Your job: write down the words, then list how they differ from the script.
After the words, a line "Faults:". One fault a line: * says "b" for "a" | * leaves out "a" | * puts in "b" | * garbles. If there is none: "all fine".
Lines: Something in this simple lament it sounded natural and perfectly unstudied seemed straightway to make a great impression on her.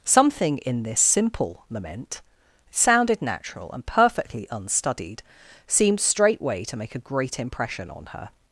Something in this simple lament sounded natural and perfectly unstudied seemed straightway to make a great impression on her.
Faults:
* leaves out "it"